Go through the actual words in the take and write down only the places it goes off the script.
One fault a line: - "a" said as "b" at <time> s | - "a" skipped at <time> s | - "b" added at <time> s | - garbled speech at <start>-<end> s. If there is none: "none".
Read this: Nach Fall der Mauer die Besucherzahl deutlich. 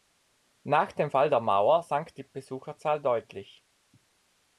- "dem" added at 0.9 s
- "sank" added at 1.8 s